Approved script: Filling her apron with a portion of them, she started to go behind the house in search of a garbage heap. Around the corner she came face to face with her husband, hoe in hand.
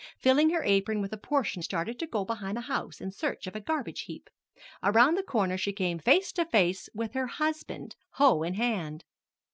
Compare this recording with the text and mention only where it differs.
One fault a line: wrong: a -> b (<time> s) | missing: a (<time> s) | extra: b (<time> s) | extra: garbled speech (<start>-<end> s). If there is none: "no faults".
missing: of them she (1.6 s)